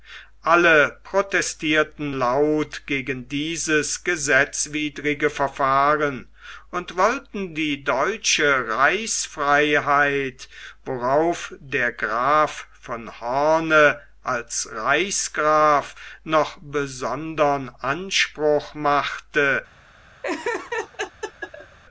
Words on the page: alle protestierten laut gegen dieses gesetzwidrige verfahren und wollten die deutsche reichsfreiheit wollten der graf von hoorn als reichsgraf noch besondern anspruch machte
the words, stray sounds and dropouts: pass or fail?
fail